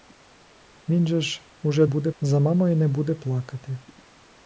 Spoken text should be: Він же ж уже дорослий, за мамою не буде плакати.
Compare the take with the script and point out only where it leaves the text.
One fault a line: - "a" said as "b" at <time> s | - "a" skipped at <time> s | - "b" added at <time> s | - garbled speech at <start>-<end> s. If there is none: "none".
- "дорослий" said as "буде" at 1.9 s